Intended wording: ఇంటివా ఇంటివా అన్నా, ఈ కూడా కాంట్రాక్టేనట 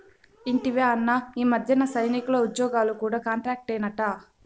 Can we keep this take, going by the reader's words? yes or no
no